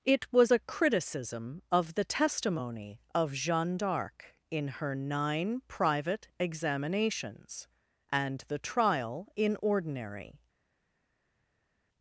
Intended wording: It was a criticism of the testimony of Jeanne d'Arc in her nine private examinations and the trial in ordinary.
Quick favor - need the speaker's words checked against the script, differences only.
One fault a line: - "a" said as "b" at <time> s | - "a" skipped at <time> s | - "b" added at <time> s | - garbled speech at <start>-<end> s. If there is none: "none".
none